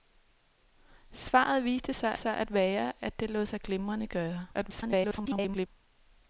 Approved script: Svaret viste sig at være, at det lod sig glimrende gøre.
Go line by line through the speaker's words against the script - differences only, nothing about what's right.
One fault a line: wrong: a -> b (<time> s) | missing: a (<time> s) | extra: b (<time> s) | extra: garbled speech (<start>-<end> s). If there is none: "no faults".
extra: sig (2.1 s)
extra: garbled speech (4.5-5.7 s)